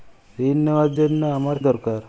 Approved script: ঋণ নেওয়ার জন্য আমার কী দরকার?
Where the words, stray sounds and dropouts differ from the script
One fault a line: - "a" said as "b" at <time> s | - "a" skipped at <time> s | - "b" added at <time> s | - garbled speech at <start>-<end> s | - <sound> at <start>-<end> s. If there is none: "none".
- "কী" skipped at 1.6 s